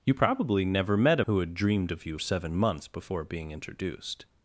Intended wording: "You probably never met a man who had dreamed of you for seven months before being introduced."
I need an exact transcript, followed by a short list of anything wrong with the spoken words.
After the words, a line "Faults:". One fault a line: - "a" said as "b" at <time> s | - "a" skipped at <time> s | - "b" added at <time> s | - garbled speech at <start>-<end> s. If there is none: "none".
"You probably never met a who had dreamed of you seven months before being introduced."
Faults:
- "man" skipped at 1.3 s
- "for" skipped at 2.2 s